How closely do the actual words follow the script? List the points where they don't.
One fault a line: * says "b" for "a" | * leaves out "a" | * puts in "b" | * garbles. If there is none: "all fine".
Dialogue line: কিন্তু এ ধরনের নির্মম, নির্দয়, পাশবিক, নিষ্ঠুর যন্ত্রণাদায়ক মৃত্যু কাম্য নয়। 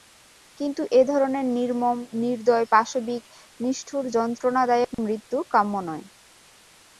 all fine